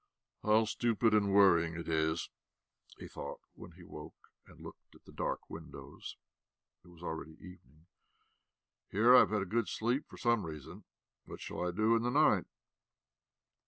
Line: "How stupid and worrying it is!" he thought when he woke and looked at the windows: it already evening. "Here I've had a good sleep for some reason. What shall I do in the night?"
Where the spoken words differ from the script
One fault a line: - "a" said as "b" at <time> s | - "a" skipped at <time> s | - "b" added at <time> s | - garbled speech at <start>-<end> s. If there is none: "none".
- "dark" added at 5.1 s
- "was" added at 6.9 s